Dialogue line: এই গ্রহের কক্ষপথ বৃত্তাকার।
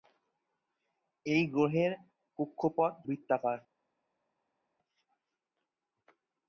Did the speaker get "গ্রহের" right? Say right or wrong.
right